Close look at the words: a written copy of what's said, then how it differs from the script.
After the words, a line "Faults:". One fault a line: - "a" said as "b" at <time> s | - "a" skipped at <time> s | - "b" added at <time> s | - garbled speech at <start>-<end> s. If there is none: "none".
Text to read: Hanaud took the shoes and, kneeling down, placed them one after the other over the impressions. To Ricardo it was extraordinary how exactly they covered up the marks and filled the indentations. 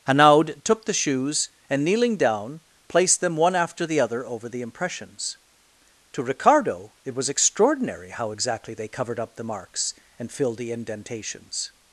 Hanaud took the shoes and, kneeling down, placed them one after the other over the impressions. To Ricardo it was extraordinary how exactly they covered up the marks and filled the indentations.
Faults:
none